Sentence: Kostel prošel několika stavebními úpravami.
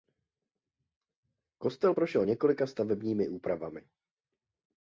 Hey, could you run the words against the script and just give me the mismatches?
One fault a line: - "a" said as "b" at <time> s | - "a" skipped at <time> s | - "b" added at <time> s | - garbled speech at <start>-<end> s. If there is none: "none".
none